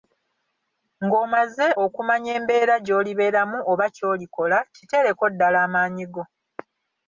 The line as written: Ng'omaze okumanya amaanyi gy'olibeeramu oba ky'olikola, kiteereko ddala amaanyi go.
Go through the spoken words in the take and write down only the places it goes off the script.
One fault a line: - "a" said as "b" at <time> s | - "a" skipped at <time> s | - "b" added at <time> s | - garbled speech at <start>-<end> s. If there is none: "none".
- "amaanyi" said as "embeera" at 2.4 s